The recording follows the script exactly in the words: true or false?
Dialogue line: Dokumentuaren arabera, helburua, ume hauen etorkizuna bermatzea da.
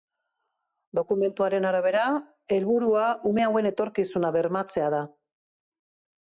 true